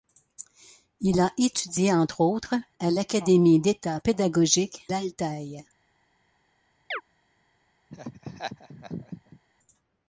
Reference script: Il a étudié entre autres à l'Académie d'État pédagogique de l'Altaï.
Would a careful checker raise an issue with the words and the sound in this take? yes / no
yes